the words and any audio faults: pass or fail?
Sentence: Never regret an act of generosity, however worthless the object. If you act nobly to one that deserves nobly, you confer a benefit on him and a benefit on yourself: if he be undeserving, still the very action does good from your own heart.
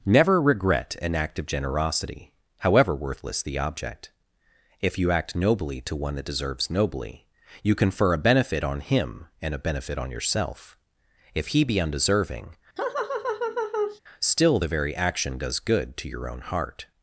fail